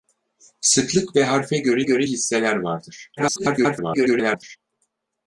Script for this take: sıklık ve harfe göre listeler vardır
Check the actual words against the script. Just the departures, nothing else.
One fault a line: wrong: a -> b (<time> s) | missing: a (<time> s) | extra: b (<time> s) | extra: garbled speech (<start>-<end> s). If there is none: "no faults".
extra: göre (1.8 s)
extra: garbled speech (3.2-4.6 s)